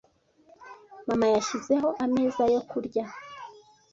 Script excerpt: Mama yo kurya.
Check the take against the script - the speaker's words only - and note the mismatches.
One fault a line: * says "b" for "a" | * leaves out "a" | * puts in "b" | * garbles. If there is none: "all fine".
* puts in "yashyizeho ameza"